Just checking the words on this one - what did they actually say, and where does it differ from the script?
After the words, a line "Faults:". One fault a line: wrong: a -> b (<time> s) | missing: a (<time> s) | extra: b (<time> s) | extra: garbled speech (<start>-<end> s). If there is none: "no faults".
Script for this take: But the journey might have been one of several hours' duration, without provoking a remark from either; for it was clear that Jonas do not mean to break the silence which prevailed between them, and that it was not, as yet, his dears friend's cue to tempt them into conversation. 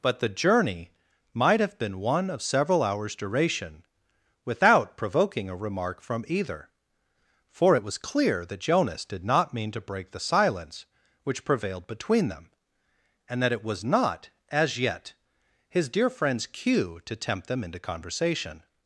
But the journey might have been one of several hours' duration, without provoking a remark from either; for it was clear that Jonas did not mean to break the silence which prevailed between them, and that it was not, as yet, his dear friend's cue to tempt them into conversation.
Faults:
wrong: do -> did (9.0 s)
wrong: dears -> dear (15.9 s)